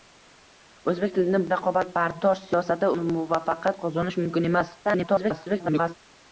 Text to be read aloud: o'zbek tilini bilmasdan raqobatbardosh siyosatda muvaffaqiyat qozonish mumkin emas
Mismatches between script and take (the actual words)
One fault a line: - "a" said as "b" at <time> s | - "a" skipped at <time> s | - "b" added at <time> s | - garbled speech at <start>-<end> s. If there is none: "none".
- "bilmasdan" skipped at 1.4 s
- garbled speech at 4.8-6.0 s